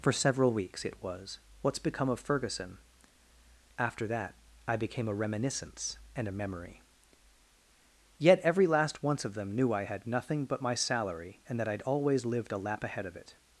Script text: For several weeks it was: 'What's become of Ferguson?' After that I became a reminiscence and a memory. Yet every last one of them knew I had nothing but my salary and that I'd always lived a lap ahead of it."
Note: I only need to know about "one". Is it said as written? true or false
false